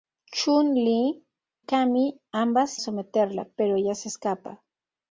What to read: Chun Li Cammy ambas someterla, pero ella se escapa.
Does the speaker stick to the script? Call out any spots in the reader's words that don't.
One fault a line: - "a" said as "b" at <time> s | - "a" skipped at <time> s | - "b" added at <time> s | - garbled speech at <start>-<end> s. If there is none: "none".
none